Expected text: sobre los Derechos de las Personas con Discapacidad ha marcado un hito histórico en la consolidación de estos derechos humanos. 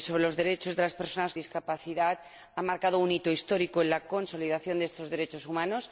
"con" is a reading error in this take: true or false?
true